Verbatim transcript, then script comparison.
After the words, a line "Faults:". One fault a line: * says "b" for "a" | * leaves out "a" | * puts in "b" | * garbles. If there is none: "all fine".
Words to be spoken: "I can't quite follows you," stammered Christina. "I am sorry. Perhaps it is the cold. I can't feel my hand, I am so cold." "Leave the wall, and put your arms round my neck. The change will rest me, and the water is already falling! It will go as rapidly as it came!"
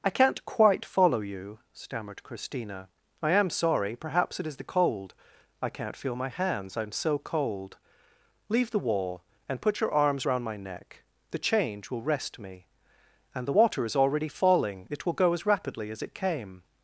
"I can't quite follow you," stammered Christina. "I am sorry. Perhaps it is the cold. I can't feel my hands, I am so cold." "Leave the wall, and put your arms round my neck. The change will rest me, and the water is already falling! It will go as rapidly as it came!"
Faults:
* says "follow" for "follows"
* says "hands" for "hand"